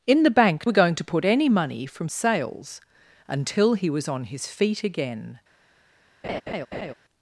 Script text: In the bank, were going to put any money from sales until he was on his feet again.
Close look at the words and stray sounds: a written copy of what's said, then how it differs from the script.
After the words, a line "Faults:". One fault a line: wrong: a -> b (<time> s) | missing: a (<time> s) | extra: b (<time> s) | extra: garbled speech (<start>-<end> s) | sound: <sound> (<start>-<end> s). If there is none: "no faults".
In the bank, were going to put any money from sales until he was on his feet again.
Faults:
sound: laugh (6.2-6.9 s)